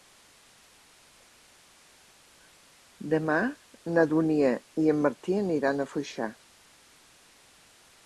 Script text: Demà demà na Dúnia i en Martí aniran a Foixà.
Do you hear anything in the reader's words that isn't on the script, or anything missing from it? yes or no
yes